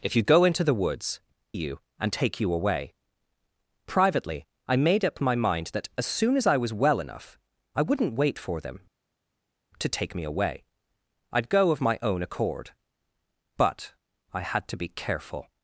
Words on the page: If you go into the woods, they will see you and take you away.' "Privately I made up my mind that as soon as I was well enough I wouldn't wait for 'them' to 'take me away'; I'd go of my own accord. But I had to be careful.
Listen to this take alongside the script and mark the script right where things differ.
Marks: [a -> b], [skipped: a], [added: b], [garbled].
If you go into the woods, [skipped: they will see] you and take you away.' "Privately I made up my mind that as soon as I was well enough I wouldn't wait for 'them' to 'take me away'; I'd go of my own accord. But I had to be careful.